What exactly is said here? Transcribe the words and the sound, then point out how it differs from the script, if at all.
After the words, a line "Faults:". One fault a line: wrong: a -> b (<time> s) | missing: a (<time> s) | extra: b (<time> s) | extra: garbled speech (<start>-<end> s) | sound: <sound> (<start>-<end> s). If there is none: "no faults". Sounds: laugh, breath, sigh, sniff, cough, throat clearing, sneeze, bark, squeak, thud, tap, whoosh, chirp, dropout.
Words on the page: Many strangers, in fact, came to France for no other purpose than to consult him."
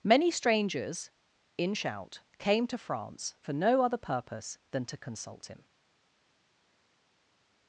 Many strangers, in shout, came to France for no other purpose than to consult him."
Faults:
wrong: fact -> shout (1.7 s)